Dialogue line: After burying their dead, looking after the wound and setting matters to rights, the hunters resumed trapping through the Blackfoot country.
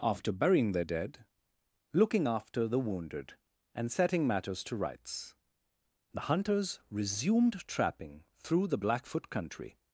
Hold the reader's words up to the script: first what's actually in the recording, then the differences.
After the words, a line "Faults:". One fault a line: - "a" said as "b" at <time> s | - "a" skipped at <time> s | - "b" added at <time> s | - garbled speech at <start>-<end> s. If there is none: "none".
After burying their dead, looking after the wounded and setting matters to rights, the hunters resumed trapping through the Blackfoot country.
Faults:
- "wound" said as "wounded" at 2.8 s